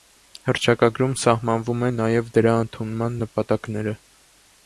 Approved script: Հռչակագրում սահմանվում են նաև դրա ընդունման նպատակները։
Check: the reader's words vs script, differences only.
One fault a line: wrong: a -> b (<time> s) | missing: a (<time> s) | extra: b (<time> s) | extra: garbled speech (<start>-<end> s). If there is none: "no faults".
no faults